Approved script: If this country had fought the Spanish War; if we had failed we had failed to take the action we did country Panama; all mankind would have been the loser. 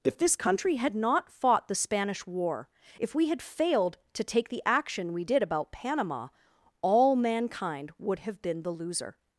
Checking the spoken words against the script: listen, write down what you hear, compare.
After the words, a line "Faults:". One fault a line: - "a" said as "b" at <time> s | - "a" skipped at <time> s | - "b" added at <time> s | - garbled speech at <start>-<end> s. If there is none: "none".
If this country had not fought the Spanish War; if we had failed to take the action we did about Panama; all mankind would have been the loser.
Faults:
- "not" added at 0.9 s
- "we had failed" skipped at 4.0 s
- "country" said as "about" at 5.4 s